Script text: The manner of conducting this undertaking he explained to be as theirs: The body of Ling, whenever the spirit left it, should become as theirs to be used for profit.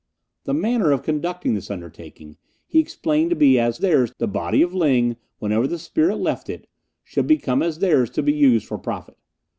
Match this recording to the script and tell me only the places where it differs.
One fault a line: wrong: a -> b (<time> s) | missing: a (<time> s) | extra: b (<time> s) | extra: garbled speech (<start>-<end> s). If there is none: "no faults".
no faults